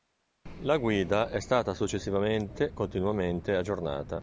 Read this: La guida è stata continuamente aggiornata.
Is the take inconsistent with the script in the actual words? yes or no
yes